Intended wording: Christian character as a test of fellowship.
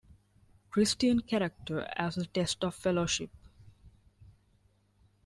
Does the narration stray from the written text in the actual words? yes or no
no